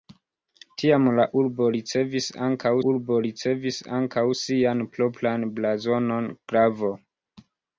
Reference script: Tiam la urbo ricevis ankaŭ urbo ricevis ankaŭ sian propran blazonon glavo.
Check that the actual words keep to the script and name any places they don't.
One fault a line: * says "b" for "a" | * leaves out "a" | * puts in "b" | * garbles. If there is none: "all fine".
all fine